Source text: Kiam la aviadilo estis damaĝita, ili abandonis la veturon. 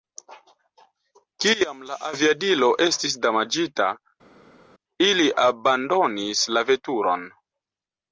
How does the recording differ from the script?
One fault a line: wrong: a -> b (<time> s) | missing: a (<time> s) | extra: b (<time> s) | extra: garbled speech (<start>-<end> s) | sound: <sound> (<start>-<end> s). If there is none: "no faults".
no faults